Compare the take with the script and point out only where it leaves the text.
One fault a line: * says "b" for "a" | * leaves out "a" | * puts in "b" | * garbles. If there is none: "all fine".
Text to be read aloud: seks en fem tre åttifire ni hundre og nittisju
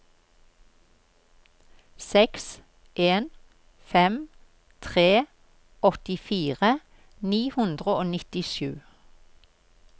all fine